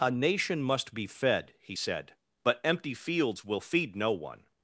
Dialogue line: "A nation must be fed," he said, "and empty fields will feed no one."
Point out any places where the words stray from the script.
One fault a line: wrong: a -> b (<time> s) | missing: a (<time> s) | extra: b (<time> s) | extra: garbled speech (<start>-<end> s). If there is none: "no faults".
wrong: and -> but (2.4 s)